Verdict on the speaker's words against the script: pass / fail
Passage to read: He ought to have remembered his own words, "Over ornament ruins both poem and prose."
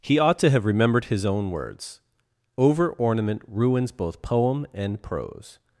pass